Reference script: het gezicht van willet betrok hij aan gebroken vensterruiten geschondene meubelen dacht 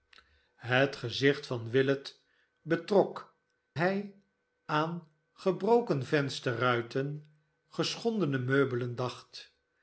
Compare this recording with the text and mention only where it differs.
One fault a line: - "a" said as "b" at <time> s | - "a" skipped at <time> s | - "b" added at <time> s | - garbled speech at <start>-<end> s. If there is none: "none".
none